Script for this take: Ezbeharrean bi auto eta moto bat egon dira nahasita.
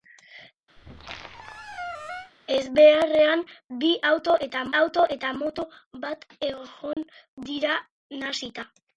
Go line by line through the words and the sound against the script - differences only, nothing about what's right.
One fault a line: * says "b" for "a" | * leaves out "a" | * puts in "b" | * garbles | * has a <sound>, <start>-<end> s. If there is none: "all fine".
* has a squeak, 0.8-2.3 s
* puts in "auto eta"
* has a dropout, 6.9-7.0 s